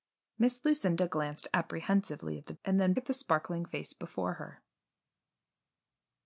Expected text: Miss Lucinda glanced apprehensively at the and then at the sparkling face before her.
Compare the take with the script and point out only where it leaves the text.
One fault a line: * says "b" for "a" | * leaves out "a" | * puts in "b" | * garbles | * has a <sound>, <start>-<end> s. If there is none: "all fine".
all fine